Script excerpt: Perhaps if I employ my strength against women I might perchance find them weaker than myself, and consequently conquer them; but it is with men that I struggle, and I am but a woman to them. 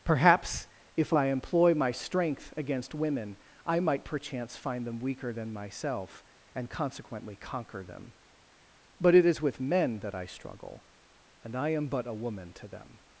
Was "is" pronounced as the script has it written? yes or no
yes